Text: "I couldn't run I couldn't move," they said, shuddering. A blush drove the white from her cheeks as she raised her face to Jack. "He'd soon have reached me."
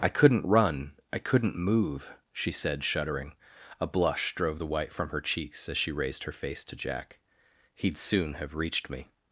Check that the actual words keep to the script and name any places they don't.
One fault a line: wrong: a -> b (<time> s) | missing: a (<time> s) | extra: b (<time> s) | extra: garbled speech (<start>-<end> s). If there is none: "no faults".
wrong: they -> she (2.3 s)